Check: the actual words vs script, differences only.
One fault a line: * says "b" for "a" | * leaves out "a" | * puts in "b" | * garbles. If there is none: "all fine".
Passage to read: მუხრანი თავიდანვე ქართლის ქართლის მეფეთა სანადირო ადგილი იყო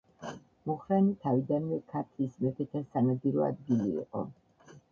* leaves out "ქართლის"